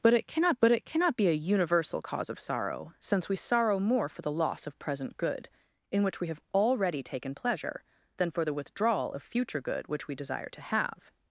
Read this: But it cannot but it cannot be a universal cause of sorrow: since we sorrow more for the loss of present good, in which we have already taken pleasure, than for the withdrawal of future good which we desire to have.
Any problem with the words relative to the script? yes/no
no